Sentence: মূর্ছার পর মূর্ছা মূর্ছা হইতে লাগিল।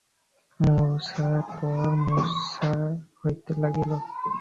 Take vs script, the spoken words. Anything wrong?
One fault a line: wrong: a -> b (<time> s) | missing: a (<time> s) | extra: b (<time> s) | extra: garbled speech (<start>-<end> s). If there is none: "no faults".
missing: মূর্ছা (2.7 s)